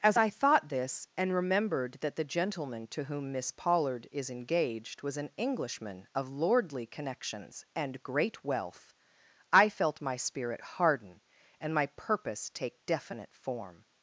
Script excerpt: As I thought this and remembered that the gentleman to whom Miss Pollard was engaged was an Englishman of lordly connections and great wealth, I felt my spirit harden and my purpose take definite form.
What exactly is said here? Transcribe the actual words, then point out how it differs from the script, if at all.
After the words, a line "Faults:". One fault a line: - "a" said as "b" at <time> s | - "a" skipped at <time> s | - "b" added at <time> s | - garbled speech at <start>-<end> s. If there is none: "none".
As I thought this and remembered that the gentleman to whom Miss Pollard is engaged was an Englishman of lordly connections and great wealth, I felt my spirit harden and my purpose take definite form.
Faults:
- "was" said as "is" at 4.1 s